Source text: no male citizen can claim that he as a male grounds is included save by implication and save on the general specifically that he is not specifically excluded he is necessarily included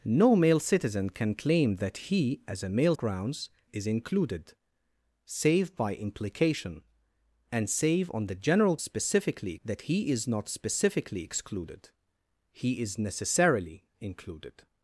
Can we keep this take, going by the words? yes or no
yes